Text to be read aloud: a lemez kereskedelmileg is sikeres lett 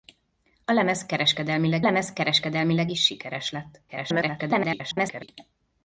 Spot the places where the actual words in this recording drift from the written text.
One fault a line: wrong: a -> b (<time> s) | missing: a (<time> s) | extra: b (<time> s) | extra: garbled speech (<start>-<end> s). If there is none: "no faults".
extra: lemez kereskedelmileg (1.8 s)
extra: garbled speech (3.9-5.3 s)